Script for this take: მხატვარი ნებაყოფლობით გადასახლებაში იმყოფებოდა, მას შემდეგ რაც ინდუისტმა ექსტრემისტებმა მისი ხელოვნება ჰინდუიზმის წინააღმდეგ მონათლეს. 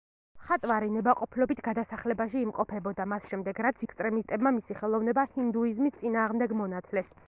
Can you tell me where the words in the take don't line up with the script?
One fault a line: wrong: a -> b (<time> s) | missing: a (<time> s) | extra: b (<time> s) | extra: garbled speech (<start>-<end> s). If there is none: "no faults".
missing: ინდუისტმა (3.9 s)